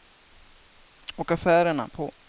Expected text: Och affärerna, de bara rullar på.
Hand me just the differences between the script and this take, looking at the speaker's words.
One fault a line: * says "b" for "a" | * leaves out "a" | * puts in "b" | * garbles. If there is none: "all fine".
* leaves out "de bara rullar"